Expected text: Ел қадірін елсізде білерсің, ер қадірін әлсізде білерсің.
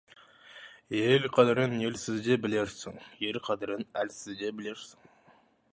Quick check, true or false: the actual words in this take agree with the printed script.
true